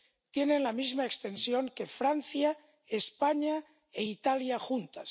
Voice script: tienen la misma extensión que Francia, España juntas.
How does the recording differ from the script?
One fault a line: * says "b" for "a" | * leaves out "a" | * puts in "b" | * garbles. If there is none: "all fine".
* puts in "e Italia"